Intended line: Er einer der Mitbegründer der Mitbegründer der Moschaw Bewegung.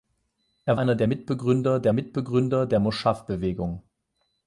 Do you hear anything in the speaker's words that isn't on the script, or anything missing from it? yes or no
no